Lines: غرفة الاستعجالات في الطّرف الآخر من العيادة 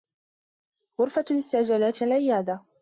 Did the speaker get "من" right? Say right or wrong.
wrong